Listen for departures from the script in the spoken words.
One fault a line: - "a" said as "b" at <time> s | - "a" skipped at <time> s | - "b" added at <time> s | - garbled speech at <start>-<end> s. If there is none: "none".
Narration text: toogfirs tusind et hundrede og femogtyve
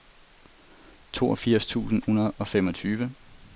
- "et" skipped at 2.0 s